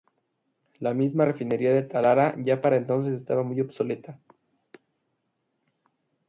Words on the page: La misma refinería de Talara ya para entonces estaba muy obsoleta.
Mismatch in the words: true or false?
false